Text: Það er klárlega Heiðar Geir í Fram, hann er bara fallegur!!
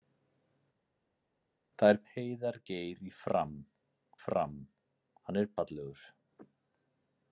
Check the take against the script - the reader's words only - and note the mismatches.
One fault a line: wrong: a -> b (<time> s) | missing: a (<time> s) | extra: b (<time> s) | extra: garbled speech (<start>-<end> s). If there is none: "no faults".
missing: klárlega (2.0 s)
extra: Fram (4.3 s)
missing: bara (5.5 s)